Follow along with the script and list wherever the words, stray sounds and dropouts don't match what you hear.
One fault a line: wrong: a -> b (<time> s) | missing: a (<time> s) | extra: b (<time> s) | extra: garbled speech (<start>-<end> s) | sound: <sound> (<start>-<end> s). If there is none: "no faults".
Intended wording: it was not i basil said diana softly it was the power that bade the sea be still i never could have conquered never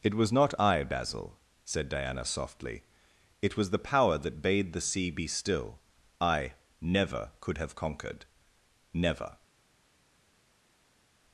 no faults